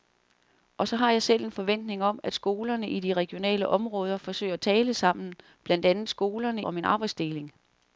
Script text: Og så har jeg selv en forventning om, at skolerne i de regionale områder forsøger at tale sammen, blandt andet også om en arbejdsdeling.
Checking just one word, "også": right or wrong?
wrong